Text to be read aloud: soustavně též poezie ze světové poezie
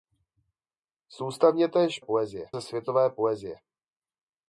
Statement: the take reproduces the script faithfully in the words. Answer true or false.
true